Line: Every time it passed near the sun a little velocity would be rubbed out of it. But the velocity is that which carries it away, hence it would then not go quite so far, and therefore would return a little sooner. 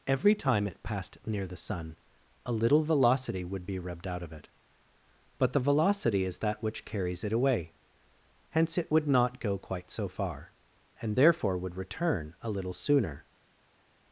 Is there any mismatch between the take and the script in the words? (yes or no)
yes